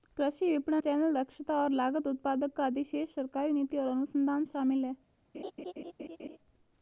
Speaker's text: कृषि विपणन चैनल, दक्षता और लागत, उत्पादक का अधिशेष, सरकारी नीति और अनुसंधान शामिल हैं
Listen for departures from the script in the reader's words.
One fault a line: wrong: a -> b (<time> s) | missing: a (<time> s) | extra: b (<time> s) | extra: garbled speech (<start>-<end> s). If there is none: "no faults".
no faults